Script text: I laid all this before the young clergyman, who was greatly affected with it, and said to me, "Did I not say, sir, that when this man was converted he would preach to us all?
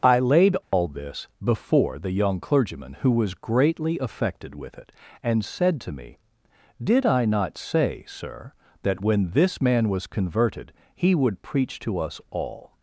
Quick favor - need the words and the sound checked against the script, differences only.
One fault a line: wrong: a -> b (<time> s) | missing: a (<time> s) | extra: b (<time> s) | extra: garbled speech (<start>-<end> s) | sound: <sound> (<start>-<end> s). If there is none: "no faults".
sound: dropout (0.6-0.7 s)